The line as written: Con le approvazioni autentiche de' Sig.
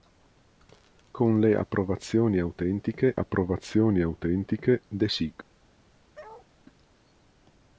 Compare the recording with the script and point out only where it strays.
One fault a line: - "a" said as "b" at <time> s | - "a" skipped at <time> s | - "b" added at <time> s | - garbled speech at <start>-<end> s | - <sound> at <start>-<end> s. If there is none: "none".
- "approvazioni autentiche" added at 3.1 s
- bark at 6.1-6.5 s